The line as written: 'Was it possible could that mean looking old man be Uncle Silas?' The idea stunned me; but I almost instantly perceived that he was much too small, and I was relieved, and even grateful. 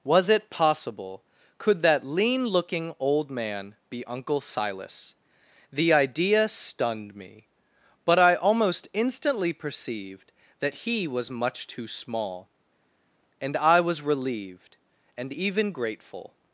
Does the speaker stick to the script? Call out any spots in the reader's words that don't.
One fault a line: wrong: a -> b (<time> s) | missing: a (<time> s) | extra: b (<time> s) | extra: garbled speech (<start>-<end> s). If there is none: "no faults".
wrong: mean -> lean (2.0 s)